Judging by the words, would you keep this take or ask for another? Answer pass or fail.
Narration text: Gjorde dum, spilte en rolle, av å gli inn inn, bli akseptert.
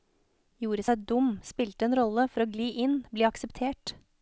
fail